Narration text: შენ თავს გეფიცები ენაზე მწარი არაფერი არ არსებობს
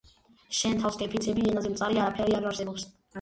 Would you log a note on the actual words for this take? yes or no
no